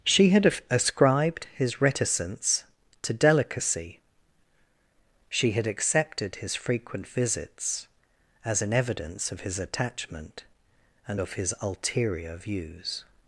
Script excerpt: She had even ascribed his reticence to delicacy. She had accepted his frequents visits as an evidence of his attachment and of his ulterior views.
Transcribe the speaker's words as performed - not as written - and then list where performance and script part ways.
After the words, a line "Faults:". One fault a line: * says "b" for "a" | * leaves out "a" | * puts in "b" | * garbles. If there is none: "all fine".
She had ascribed his reticence to delicacy. She had accepted his frequent visits as an evidence of his attachment and of his ulterior views.
Faults:
* leaves out "even"
* says "frequent" for "frequents"